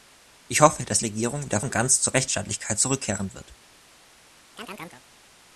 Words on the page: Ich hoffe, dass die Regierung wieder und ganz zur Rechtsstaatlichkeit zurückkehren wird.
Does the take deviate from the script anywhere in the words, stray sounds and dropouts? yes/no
yes